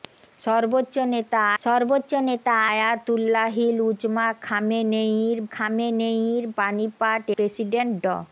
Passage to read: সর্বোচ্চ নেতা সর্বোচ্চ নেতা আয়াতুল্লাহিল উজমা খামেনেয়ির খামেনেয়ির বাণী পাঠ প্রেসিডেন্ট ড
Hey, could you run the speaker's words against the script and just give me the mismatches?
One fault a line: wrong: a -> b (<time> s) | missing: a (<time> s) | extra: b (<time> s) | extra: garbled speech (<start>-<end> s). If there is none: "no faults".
no faults